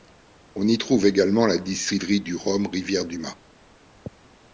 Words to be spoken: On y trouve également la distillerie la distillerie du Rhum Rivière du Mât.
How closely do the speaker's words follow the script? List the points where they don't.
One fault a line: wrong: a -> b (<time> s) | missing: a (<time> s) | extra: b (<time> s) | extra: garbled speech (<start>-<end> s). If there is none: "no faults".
missing: la distillerie (2.2 s)